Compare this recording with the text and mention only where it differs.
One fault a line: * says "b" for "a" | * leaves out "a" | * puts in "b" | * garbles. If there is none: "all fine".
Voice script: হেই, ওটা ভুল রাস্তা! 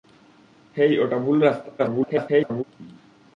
* garbles